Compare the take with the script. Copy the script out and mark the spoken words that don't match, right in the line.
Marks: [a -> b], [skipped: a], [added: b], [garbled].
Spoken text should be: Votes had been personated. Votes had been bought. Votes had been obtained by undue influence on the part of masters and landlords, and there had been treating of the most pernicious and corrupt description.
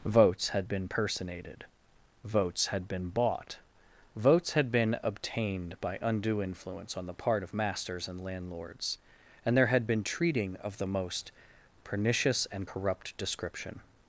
Votes had been personated. Votes had been bought. Votes had been obtained by undue influence on the part of masters and landlords, and there had been treating of the most pernicious and corrupt description.